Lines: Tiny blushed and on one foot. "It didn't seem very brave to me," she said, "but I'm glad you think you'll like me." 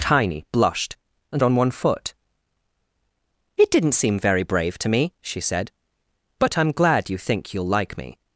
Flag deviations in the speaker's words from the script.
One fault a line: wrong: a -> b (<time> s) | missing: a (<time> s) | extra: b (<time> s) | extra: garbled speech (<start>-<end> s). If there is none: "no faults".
no faults